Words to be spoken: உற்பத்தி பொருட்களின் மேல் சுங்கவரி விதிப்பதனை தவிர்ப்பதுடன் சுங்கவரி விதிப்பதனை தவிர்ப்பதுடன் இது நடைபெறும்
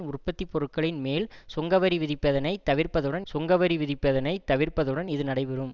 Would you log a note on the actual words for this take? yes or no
no